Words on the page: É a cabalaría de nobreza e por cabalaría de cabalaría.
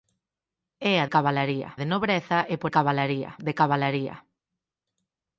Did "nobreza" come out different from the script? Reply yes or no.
no